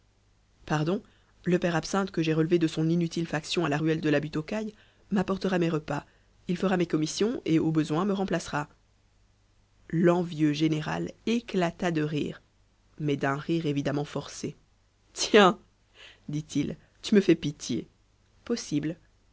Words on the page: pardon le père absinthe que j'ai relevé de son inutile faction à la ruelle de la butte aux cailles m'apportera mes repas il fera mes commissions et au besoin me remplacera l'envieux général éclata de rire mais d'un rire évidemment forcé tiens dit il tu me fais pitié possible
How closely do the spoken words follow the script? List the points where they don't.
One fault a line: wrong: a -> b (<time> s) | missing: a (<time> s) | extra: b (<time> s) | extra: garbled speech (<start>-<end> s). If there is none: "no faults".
no faults